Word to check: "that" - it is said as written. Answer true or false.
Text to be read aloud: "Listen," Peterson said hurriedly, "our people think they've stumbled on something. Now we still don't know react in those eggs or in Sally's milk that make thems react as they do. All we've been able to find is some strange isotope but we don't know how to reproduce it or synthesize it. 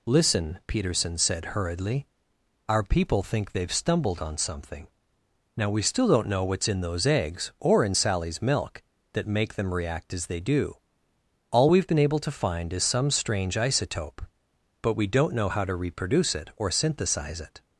true